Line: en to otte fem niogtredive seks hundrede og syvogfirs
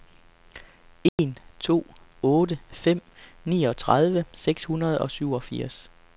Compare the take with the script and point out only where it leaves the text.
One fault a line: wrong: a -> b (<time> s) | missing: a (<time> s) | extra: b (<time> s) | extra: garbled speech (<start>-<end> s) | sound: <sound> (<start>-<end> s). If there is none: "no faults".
sound: dropout (1.1-1.2 s)